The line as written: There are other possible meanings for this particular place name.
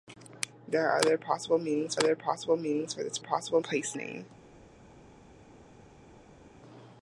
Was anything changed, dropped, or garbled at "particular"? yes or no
yes